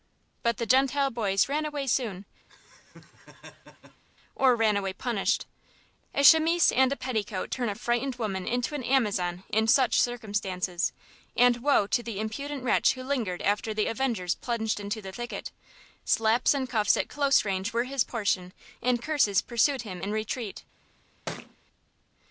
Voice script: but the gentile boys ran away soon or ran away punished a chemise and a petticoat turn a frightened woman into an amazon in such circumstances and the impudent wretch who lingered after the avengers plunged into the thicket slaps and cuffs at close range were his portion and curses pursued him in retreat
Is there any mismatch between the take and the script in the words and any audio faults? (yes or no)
yes